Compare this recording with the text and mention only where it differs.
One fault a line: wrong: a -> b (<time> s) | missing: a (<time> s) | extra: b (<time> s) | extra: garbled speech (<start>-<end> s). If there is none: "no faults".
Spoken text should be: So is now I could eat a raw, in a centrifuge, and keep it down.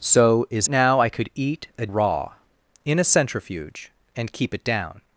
no faults